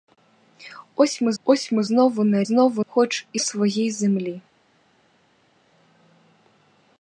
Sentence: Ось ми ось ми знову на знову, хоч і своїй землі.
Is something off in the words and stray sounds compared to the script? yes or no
no